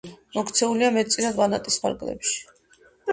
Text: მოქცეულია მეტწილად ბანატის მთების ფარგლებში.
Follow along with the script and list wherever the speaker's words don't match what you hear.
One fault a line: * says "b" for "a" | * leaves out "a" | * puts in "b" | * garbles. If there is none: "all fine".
* leaves out "მთების"